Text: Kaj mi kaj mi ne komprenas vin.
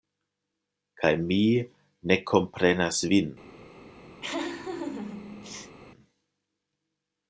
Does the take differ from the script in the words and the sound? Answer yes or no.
yes